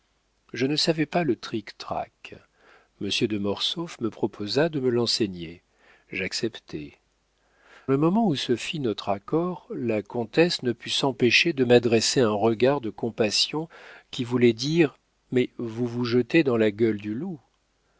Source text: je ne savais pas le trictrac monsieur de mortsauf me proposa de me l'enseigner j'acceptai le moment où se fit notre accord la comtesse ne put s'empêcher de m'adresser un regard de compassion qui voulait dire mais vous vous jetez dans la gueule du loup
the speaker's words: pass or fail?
pass